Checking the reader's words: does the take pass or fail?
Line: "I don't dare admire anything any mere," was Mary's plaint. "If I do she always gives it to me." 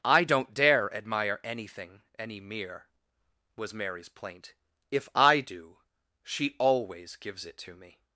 pass